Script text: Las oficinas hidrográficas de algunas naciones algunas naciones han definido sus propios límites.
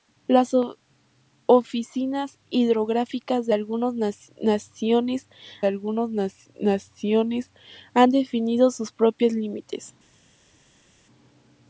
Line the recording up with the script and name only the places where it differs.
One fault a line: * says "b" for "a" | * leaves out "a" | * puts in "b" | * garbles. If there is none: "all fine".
all fine